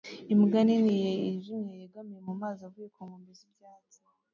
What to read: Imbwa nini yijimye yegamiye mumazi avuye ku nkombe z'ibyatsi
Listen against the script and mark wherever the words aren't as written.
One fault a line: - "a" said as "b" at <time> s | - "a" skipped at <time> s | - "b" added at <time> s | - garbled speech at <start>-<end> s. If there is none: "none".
none